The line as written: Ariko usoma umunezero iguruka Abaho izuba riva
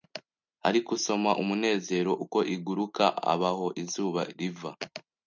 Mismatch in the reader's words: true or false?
true